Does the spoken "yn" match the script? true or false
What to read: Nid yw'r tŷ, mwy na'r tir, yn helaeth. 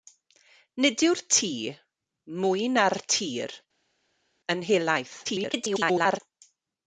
true